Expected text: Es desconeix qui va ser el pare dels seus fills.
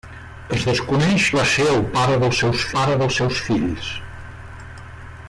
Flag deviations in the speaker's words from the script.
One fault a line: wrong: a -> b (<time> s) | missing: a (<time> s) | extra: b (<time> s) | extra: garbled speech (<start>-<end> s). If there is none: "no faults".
missing: qui (1.2 s)
extra: pare dels seus (2.8 s)